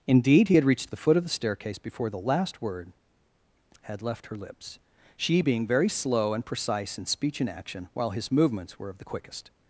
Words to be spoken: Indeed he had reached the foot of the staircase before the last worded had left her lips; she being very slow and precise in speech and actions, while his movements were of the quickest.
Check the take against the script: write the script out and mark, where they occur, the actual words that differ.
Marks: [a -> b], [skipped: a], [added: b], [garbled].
Indeed he had reached the foot of the staircase before the last [worded -> word] had left her lips; she being very slow and precise in speech and [actions, -> action] while his movements were of the quickest.